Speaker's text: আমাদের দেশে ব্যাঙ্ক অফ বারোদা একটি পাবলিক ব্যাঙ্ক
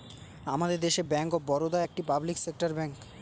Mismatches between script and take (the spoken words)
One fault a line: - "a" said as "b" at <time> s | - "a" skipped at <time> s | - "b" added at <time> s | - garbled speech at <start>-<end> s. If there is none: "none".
- "সেক্টর" added at 2.4 s